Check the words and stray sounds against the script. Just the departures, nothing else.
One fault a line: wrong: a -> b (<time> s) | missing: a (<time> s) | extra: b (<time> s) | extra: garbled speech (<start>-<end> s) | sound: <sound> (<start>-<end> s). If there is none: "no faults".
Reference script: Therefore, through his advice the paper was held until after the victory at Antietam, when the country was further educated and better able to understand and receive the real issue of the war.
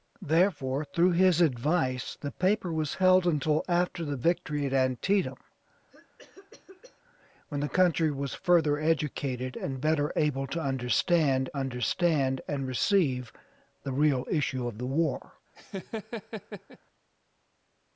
sound: cough (5.9-7.0 s)
extra: understand (11.5 s)
sound: laugh (15.5-16.8 s)